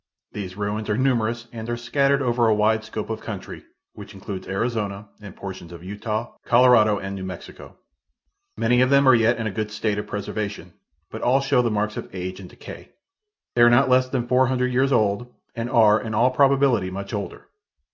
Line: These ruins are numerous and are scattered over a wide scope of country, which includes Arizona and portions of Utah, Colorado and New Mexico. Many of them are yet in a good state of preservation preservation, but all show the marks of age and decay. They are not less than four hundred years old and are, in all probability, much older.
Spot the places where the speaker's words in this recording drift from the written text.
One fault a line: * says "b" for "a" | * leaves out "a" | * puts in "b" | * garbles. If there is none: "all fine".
* leaves out "preservation"